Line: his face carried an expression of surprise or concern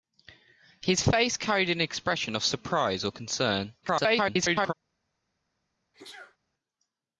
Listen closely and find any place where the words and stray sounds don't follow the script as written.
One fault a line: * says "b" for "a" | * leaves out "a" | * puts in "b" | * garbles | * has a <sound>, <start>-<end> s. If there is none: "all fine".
* garbles
* has a sneeze, 5.9-6.4 s